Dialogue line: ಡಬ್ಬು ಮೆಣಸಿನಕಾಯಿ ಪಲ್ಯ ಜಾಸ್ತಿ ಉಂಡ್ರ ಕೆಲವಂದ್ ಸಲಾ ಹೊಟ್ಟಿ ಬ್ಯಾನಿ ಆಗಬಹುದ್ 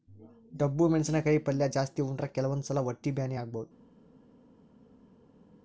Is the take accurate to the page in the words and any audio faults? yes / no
yes